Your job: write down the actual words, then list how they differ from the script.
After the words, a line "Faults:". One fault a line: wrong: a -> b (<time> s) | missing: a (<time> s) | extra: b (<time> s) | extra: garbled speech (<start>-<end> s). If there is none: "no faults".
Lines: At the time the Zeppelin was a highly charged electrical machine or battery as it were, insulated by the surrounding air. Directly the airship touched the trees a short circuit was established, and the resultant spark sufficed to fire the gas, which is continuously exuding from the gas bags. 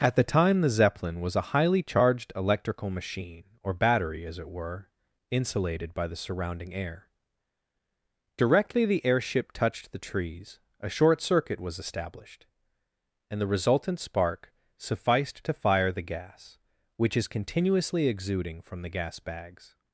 At the time the Zeppelin was a highly charged electrical machine or battery as it were, insulated by the surrounding air. Directly the airship touched the trees a short circuit was established, and the resultant spark sufficed to fire the gas, which is continuously exuding from the gas bags.
Faults:
no faults